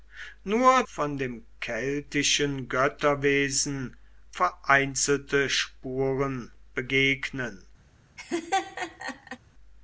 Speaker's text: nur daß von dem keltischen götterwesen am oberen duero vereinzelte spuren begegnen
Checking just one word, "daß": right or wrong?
wrong